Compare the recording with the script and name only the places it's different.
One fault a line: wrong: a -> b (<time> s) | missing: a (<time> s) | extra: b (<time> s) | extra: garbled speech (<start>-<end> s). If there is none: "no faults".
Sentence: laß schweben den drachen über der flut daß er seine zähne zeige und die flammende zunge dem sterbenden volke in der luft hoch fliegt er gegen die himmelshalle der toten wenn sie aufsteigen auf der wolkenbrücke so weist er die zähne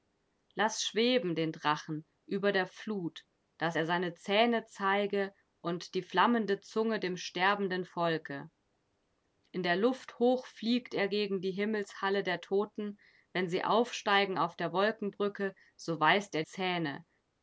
missing: die (16.4 s)